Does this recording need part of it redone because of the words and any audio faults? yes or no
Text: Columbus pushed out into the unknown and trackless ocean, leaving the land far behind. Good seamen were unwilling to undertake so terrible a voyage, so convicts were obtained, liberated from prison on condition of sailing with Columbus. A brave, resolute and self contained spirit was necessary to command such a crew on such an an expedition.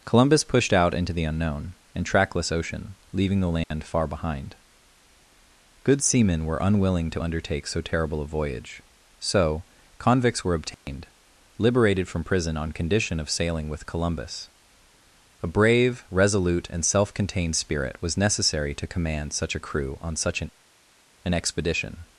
yes